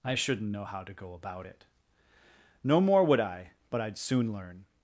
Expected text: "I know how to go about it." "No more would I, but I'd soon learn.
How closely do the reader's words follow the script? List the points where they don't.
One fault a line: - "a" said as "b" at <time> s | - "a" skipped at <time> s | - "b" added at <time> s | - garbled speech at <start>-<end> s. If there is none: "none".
- "shouldn't" added at 0.1 s